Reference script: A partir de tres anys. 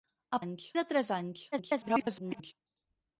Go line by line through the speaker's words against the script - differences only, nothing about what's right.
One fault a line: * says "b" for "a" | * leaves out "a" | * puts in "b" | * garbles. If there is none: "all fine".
* says "anys" for "partir"
* garbles